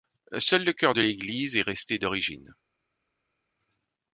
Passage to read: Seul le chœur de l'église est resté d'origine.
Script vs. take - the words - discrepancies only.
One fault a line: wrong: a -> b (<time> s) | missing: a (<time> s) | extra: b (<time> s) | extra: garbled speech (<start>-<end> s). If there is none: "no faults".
no faults